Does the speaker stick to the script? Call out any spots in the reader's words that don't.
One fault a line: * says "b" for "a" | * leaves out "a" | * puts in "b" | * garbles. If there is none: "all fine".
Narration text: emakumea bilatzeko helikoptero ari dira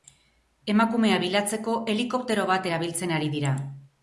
* puts in "bat erabiltzen"